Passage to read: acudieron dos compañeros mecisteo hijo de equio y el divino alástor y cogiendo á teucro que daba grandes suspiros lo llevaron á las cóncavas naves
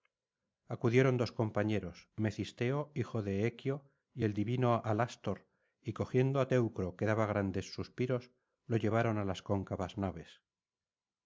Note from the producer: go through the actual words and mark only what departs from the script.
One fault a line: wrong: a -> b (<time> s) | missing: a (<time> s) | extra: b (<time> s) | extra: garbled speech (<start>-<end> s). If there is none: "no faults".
no faults